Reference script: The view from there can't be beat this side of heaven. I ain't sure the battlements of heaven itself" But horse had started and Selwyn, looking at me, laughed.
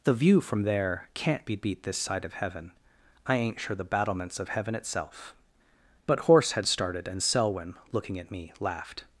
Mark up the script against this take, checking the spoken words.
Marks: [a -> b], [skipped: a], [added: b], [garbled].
The view from there can't be beat this side of heaven. I ain't sure the battlements of heaven itself" But horse had started and Selwyn, looking at me, laughed.